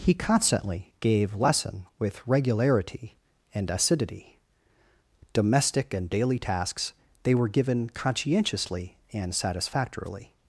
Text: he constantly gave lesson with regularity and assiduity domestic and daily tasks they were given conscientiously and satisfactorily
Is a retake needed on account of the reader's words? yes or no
no